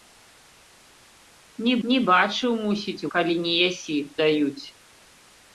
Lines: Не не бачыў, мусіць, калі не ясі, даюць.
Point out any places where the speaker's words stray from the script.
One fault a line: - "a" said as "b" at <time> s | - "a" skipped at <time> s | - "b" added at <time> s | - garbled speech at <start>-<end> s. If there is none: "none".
none